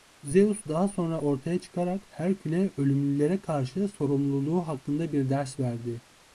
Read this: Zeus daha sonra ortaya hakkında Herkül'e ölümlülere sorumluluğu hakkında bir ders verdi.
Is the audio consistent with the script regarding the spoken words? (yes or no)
no